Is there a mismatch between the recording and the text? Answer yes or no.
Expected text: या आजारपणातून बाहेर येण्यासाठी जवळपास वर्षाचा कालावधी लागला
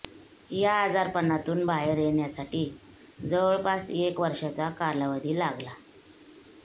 yes